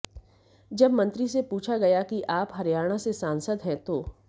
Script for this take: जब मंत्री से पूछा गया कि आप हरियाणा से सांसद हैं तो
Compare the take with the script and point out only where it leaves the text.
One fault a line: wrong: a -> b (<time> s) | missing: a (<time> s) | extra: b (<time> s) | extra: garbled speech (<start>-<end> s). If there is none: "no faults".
no faults